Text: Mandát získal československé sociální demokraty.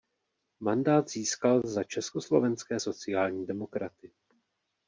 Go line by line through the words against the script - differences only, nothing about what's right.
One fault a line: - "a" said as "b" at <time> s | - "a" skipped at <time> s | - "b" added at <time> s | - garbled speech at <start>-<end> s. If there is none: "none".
- "za" added at 1.6 s